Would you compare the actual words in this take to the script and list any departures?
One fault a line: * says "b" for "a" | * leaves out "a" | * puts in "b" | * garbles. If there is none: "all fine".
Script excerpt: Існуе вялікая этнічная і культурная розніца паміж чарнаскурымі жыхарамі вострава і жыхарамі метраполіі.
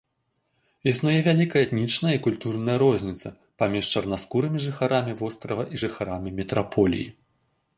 all fine